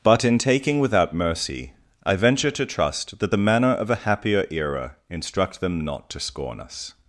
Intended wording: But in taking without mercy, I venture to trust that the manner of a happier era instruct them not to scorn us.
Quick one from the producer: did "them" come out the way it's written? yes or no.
yes